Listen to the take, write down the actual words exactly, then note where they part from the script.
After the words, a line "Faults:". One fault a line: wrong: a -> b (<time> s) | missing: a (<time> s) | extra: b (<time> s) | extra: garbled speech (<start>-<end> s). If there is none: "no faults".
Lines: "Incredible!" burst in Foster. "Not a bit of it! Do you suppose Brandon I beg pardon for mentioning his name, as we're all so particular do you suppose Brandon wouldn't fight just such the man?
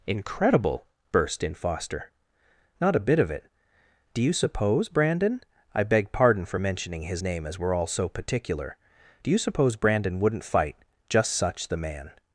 "Incredible!" burst in Foster. "Not a bit of it! Do you suppose Brandon I beg pardon for mentioning his name, as we're all so particular do you suppose Brandon wouldn't fight just such the man?
Faults:
no faults